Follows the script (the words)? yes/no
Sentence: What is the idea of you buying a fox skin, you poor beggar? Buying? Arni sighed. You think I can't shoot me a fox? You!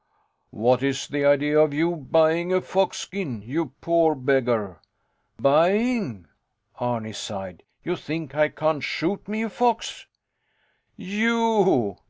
yes